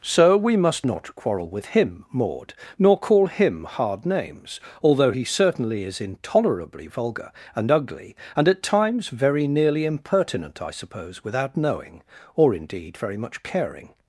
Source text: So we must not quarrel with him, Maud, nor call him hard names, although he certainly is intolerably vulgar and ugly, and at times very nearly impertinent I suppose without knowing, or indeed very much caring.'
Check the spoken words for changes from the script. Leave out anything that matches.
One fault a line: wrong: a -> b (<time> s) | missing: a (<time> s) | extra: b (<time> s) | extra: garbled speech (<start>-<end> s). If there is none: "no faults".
no faults